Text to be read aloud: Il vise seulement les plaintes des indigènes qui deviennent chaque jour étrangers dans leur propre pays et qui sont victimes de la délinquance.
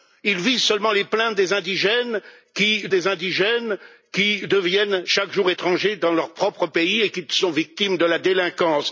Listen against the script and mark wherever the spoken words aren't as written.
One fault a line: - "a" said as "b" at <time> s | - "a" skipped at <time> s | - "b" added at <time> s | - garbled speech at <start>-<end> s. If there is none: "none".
- "des indigènes qui" added at 2.9 s